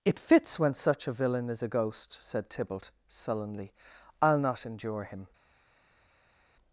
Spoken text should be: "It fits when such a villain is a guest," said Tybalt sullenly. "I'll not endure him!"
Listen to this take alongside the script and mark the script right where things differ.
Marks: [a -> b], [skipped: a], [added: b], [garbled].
"It fits when such a villain is a [guest," -> ghost] said Tybalt sullenly. "I'll not endure him!"